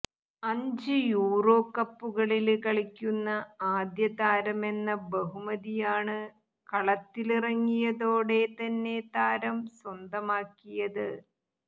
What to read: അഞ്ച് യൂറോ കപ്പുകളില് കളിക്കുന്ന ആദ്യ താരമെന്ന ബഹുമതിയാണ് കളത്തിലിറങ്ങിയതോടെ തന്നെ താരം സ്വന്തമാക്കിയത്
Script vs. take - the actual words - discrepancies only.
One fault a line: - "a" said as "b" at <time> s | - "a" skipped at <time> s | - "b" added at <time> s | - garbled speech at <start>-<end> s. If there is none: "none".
none